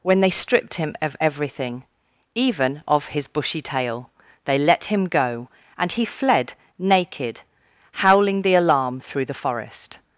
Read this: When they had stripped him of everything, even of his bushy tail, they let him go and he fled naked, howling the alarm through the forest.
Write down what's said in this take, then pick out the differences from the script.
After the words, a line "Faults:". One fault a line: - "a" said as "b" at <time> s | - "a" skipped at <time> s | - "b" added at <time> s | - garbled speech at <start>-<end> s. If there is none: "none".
When they stripped him of everything, even of his bushy tail, they let him go and he fled naked, howling the alarm through the forest.
Faults:
- "had" skipped at 0.3 s